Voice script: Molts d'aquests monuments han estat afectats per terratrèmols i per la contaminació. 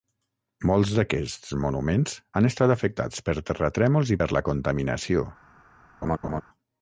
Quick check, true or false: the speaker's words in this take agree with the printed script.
true